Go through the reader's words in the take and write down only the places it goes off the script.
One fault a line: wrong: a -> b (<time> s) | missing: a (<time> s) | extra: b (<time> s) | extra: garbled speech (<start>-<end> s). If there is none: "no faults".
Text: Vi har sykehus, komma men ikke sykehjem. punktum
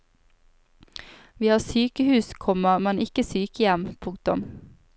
no faults